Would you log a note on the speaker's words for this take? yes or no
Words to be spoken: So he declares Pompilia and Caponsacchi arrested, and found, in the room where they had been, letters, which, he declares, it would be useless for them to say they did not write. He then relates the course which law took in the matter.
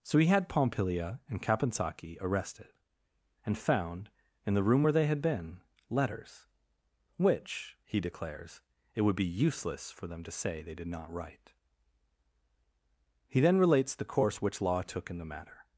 yes